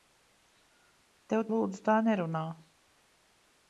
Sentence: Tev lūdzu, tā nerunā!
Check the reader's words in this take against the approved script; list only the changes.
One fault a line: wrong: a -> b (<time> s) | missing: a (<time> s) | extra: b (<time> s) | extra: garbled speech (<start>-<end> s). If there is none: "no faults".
no faults